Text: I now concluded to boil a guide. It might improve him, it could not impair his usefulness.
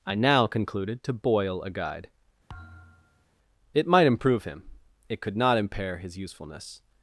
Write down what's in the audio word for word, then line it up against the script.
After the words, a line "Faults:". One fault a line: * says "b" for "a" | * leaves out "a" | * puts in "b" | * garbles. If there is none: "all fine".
I now concluded to boil a guide. It might improve him, it could not impair his usefulness.
Faults:
all fine